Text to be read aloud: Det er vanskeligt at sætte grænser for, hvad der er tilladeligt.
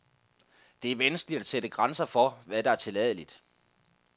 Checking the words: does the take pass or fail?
pass